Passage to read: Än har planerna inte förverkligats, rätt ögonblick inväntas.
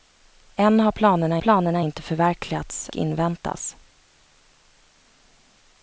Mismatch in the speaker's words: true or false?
true